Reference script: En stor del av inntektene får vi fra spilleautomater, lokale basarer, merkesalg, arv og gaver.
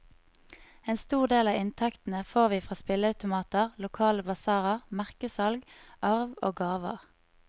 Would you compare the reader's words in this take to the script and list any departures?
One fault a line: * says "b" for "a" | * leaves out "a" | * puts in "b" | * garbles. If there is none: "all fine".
all fine